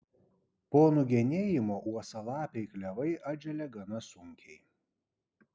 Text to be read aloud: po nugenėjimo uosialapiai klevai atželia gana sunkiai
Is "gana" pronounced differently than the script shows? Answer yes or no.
no